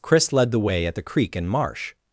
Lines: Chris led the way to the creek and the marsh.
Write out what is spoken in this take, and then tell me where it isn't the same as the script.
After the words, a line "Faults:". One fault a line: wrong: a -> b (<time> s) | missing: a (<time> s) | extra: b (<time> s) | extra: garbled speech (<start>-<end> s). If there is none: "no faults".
Chris led the way at the creek and marsh.
Faults:
wrong: to -> at (0.8 s)
missing: the (1.5 s)